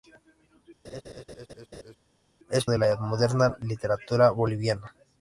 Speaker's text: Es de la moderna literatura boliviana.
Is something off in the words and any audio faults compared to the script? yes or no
yes